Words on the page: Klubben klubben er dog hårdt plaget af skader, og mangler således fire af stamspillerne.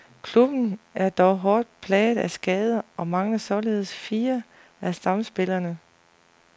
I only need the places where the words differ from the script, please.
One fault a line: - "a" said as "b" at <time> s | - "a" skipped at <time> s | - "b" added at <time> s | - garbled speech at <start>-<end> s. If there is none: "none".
- "klubben" skipped at 0.8 s